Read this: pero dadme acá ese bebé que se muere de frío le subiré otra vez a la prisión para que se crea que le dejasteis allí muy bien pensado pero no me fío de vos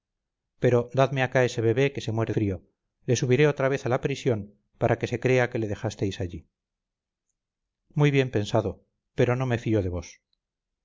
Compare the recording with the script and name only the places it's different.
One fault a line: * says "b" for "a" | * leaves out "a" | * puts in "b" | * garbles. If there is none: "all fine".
* leaves out "de"